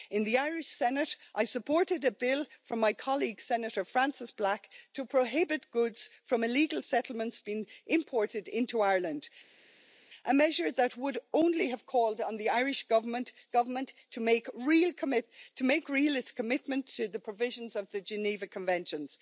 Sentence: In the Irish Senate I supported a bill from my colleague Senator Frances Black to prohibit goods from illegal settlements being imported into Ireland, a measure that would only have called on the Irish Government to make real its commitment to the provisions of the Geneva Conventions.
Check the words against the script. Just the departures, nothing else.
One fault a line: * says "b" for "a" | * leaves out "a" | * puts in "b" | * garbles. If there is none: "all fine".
* puts in "Government"